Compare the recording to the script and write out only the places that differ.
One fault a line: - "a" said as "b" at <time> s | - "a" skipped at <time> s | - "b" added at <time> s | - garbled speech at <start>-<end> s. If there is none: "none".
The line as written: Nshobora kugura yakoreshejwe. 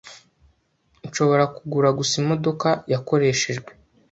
- "gusa imodoka" added at 2.0 s